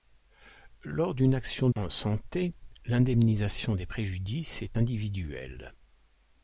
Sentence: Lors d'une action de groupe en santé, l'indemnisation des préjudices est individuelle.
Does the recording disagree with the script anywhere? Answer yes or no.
yes